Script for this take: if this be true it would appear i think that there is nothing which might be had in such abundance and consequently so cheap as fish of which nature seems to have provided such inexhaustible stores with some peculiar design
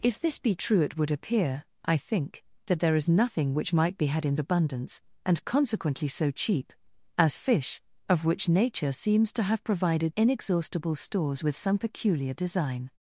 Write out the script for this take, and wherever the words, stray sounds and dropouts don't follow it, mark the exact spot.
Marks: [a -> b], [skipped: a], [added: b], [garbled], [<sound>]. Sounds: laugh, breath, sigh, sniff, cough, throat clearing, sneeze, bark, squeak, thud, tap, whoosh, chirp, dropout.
if this be true it would appear i think that there is nothing which might be had in [skipped: such] abundance and consequently so cheap as fish of which nature seems to have provided [skipped: such] inexhaustible stores with some peculiar design